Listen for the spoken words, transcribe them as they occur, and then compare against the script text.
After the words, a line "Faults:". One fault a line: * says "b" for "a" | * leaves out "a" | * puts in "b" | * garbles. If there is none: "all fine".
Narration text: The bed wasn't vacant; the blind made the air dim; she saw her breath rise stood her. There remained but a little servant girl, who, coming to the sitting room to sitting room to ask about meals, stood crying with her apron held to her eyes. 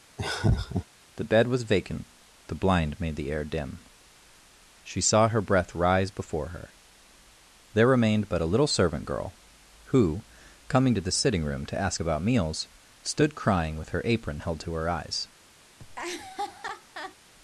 The bed was vacant; the blind made the air dim; she saw her breath rise before her. There remained but a little servant girl, who, coming to the sitting room to ask about meals, stood crying with her apron held to her eyes.
Faults:
* says "was" for "wasn't"
* says "before" for "stood"
* leaves out "sitting room to"